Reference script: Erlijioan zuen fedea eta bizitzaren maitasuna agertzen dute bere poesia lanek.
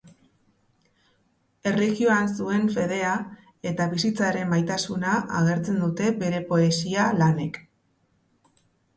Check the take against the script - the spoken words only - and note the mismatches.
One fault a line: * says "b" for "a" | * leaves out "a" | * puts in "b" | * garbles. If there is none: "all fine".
all fine